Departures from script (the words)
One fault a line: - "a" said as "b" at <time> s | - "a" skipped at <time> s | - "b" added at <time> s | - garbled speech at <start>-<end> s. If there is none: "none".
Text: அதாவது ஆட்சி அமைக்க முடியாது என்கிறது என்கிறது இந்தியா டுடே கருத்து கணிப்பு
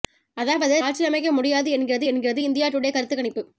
none